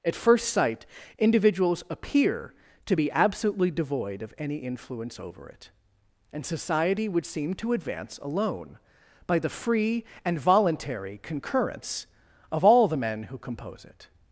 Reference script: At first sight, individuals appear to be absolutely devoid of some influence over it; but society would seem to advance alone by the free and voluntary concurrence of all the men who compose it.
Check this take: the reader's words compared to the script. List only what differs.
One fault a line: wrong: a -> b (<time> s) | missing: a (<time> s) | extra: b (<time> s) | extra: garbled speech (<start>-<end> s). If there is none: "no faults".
wrong: some -> any (4.4 s)
wrong: but -> and (6.3 s)